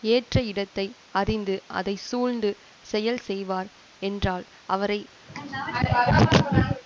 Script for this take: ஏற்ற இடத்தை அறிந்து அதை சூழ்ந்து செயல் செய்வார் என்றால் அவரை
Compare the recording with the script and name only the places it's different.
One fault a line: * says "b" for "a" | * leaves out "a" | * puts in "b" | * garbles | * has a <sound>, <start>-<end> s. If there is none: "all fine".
* has a throat clearing, 5.3-6.8 s